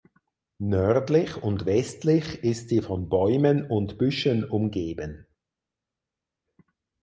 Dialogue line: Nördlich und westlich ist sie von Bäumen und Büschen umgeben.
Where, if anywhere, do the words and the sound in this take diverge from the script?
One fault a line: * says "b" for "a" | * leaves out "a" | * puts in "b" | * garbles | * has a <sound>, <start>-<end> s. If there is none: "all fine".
all fine